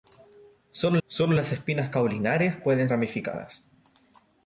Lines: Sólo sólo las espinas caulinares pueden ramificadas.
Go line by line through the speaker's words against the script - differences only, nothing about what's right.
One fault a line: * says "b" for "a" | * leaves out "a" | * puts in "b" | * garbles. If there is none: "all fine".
all fine